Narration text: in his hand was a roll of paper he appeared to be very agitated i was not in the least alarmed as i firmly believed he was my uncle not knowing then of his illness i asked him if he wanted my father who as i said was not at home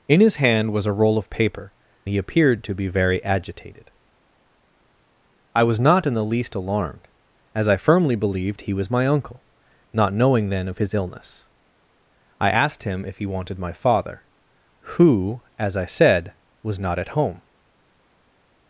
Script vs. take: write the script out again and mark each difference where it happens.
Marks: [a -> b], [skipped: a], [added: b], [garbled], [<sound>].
in his hand was a roll of paper he appeared to be very agitated i was not in the least alarmed as i firmly believed he was my uncle not knowing then of his illness i asked him if he wanted my father who as i said was not at home